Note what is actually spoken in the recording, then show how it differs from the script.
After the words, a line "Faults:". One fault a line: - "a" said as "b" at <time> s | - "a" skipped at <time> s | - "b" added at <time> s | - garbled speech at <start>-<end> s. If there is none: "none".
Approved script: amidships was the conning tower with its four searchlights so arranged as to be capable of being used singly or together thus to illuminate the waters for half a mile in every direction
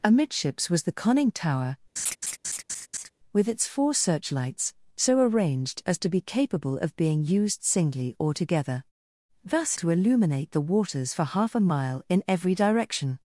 amidships was the conning tower with its four searchlights so arranged as to be capable of being used singly or together thus to illuminate the waters for half a mile in every direction
Faults:
none